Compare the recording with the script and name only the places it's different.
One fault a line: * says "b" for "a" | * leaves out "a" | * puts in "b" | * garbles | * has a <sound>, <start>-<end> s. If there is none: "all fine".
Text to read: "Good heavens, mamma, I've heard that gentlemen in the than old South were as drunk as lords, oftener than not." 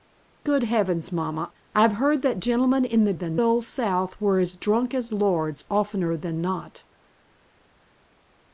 all fine